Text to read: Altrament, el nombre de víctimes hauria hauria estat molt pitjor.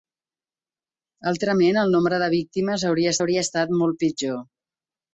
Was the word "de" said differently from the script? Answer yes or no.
no